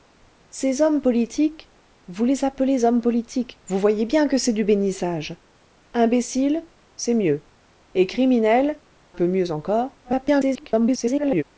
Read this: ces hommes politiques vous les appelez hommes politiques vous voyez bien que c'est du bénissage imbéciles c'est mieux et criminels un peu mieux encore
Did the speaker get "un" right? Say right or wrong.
wrong